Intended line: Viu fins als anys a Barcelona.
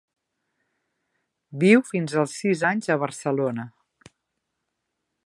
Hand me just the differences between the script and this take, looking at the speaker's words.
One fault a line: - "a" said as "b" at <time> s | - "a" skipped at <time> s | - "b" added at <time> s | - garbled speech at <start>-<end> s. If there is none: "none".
- "sis" added at 2.4 s